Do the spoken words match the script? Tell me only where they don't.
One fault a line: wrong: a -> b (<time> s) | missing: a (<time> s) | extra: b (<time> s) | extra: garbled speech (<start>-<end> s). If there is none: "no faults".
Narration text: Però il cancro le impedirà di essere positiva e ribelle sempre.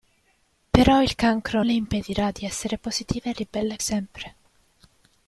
no faults